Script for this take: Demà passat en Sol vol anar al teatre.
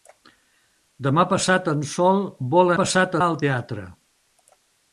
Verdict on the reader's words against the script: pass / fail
fail